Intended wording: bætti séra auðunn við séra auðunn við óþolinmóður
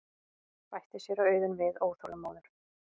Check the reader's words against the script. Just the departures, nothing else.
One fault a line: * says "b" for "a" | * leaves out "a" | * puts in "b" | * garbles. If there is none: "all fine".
* leaves out "séra auðunn við"